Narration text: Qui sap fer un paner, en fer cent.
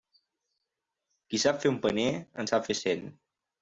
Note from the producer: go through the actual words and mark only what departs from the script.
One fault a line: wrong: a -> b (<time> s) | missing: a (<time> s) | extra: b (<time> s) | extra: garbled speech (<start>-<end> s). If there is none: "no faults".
extra: sap (2.5 s)